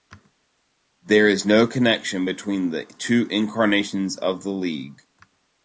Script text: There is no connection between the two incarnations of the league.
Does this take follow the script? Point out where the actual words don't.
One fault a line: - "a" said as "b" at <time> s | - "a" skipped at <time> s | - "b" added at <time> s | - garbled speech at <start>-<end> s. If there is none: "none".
none